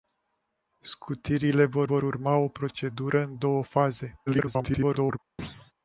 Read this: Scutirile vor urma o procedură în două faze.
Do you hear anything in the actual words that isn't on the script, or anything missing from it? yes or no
yes